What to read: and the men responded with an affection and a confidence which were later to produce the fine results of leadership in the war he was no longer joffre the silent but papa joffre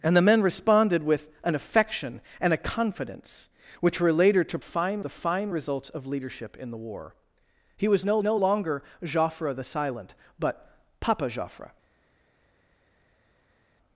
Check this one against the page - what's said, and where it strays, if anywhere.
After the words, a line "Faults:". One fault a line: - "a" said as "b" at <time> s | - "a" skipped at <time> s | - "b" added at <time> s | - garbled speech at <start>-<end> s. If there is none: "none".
and the men responded with an affection and a confidence which were later to fine the fine results of leadership in the war he was no no longer joffre the silent but papa joffre
Faults:
- "produce" said as "fine" at 4.6 s
- "no" added at 8.2 s